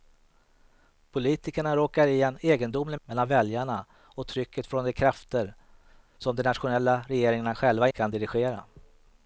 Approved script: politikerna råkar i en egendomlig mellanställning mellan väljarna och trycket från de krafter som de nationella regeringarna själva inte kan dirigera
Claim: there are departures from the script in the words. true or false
true